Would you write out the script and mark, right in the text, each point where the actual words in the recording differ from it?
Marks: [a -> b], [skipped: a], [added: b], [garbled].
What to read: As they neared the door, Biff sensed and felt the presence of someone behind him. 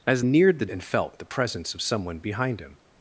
As [skipped: they] neared the [skipped: door, Biff sensed] and felt the presence of someone behind him.